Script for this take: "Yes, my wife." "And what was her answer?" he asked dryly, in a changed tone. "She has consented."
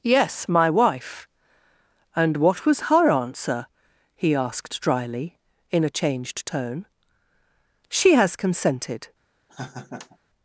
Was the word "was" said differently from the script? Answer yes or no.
no